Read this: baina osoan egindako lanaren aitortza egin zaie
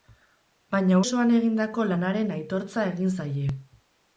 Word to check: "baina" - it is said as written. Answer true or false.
true